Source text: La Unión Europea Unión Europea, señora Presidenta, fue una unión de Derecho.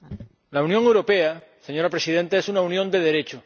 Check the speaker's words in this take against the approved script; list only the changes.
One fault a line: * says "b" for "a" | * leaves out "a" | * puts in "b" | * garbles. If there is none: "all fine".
* leaves out "Unión Europea"
* says "es" for "fue"